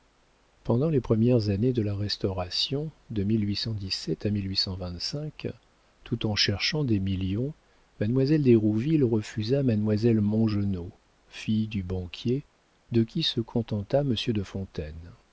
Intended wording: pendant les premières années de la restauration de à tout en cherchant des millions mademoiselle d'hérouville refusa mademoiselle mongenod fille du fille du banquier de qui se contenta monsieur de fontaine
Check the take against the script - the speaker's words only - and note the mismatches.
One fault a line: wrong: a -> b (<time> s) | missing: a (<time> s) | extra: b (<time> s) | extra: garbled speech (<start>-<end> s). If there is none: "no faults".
missing: fille du (11.8 s)